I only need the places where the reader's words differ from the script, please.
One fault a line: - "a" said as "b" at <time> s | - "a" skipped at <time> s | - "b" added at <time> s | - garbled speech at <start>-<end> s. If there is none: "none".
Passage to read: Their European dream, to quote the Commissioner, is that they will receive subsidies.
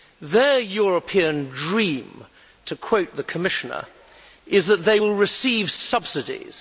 none